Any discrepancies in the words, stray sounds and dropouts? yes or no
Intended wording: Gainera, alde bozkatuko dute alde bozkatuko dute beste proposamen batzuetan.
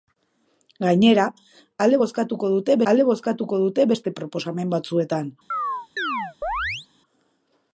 yes